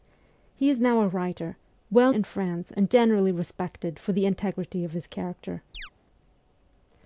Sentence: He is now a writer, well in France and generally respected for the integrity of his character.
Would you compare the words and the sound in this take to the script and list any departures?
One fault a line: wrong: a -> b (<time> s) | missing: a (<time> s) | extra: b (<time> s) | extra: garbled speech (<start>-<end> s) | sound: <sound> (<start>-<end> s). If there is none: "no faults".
sound: chirp (5.7-5.9 s)